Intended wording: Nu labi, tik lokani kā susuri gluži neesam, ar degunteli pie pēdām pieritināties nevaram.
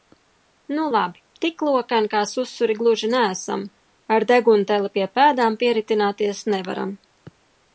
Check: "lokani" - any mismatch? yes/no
no